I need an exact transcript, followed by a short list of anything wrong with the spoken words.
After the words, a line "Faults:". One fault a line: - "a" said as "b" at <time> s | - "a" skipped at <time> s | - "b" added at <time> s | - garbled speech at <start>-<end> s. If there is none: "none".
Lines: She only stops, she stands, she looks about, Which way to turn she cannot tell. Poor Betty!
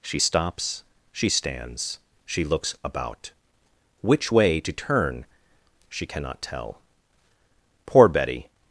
She stops, she stands, she looks about, Which way to turn she cannot tell. Poor Betty!
Faults:
- "only" skipped at 0.2 s